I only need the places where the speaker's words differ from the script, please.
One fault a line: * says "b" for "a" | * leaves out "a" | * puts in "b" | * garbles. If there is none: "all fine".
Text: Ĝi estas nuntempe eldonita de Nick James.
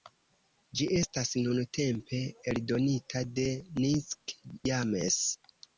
all fine